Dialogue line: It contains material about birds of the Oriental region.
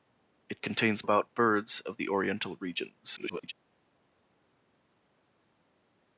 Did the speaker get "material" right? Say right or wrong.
wrong